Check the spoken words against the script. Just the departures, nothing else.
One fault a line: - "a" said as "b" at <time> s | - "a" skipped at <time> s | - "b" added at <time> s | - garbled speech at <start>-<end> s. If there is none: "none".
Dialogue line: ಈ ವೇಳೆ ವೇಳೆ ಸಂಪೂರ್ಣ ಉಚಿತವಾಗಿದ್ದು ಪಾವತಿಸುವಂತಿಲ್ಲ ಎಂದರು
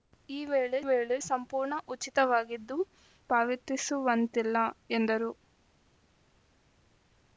none